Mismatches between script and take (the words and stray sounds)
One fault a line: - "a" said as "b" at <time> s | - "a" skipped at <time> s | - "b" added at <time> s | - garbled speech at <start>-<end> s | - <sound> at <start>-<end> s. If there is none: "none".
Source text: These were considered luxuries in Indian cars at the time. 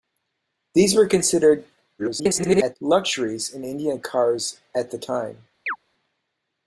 - garbled speech at 2.0-2.8 s
- chirp at 5.7-5.8 s